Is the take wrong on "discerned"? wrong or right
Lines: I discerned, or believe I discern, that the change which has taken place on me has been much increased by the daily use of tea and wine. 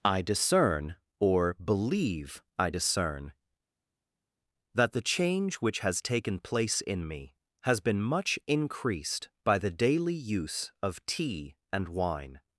wrong